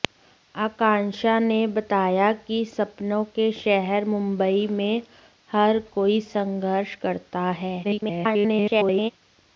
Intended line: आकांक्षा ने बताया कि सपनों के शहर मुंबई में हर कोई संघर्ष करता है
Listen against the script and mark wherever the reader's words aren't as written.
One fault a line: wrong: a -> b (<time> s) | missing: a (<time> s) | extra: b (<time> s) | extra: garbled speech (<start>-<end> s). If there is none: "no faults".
extra: garbled speech (7.8-9.1 s)